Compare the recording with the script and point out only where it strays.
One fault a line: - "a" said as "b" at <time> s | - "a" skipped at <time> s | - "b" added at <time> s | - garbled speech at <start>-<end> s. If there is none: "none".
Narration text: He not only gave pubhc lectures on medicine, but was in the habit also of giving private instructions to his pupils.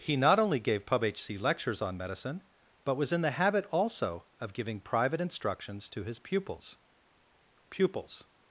- "pupils" added at 7.7 s